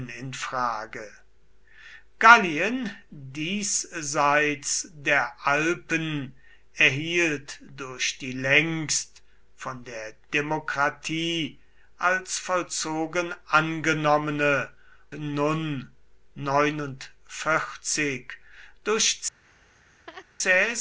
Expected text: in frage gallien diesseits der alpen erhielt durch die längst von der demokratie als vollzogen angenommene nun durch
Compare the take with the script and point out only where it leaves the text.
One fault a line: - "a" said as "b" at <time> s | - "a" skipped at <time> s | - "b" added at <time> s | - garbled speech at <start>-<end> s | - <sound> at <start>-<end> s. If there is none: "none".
- laugh at 19.4-20.3 s